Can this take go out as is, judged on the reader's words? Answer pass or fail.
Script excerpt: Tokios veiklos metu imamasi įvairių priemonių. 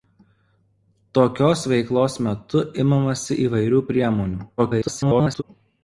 fail